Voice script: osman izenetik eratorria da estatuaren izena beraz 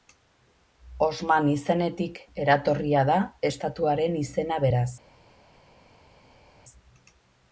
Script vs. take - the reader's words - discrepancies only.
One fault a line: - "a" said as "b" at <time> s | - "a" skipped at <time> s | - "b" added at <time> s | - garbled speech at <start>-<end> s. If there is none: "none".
none